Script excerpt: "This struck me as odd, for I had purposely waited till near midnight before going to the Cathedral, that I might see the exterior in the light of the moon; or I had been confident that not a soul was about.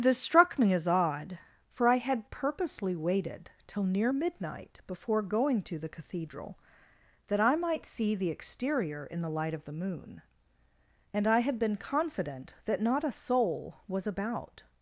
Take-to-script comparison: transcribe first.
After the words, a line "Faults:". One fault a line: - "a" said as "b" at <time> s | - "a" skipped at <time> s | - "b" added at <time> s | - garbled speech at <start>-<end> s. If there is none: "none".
"This struck me as odd, for I had purposely waited till near midnight before going to the Cathedral, that I might see the exterior in the light of the moon; and I had been confident that not a soul was about.
Faults:
- "or" said as "and" at 11.1 s